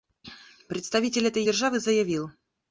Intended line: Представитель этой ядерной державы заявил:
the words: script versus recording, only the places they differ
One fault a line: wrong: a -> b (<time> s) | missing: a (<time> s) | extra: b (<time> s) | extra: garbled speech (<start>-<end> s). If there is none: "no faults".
missing: ядерной (1.4 s)